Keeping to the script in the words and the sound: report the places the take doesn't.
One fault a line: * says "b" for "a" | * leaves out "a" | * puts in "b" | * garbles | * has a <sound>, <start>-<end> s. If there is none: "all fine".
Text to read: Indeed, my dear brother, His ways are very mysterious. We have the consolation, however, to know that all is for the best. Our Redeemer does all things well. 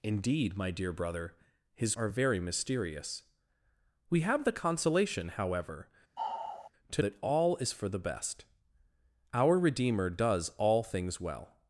* leaves out "ways"
* has a sigh, 6.2-6.7 s
* leaves out "know"